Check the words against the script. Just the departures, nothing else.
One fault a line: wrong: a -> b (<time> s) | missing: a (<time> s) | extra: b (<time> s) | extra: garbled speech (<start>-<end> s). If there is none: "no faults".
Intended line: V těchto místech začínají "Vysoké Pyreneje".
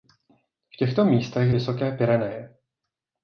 missing: začínají (1.5 s)